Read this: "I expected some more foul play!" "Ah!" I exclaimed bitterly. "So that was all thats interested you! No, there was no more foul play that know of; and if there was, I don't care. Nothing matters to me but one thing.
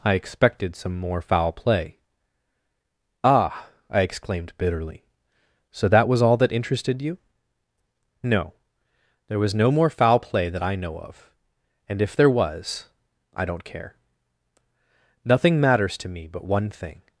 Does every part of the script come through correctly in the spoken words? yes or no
no